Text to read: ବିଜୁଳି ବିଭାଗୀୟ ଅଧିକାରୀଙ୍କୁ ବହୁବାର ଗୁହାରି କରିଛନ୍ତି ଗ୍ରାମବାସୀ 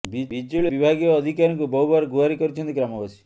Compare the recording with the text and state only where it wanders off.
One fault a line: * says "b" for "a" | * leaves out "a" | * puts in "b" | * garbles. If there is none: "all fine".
all fine